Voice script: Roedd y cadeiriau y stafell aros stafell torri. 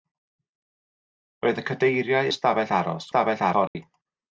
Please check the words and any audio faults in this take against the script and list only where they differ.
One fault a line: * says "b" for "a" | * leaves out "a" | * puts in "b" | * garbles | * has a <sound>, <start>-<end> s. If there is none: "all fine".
* has a dropout, 3.7-3.8 s